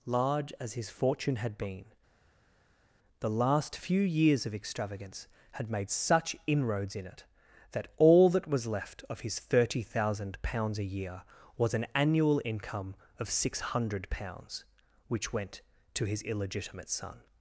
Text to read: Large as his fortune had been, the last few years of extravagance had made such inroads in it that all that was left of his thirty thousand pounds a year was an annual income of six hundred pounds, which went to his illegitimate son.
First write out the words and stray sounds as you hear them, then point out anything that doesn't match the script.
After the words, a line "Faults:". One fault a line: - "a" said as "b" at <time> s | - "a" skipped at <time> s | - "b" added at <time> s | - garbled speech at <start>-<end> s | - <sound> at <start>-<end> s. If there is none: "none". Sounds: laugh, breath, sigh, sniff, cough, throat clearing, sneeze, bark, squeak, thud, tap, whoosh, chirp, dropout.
Large as his fortune had been, the last few years of extravagance had made such inroads in it that all that was left of his thirty thousand pounds a year was an annual income of six hundred pounds, which went to his illegitimate son.
Faults:
none